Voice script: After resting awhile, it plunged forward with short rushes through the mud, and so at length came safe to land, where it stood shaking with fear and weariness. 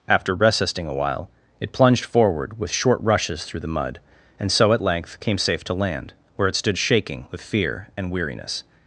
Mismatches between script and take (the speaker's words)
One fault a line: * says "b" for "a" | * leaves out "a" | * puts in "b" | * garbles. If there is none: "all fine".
* says "resisting a while" for "resting awhile"